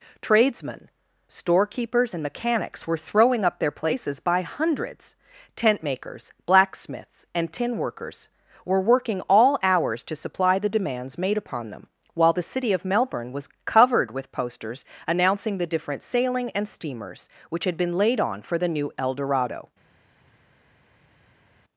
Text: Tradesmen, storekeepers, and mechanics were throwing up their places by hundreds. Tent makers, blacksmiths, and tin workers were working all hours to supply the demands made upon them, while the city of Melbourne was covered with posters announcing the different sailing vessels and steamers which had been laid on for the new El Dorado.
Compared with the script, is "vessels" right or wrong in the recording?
wrong